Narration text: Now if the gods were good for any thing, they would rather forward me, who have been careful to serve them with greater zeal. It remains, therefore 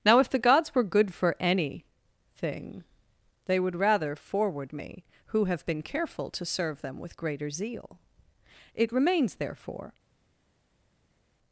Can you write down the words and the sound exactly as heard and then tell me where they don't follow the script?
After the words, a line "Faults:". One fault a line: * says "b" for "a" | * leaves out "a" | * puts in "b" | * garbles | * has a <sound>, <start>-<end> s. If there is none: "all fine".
Now if the gods were good for any thing, they would rather forward me, who have been careful to serve them with greater zeal. It remains, therefore
Faults:
all fine